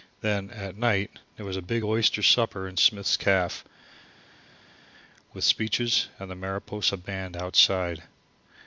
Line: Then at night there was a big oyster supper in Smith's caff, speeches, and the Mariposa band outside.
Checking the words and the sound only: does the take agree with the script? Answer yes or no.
no